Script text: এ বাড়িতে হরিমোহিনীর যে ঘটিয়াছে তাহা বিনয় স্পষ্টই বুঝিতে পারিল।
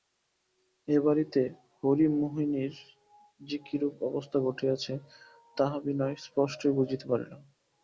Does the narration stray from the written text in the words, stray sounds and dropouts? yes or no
yes